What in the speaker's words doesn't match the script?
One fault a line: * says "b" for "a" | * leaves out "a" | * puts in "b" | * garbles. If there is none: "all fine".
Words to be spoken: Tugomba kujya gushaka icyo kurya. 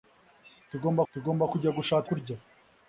* puts in "tugomba"
* leaves out "icyo"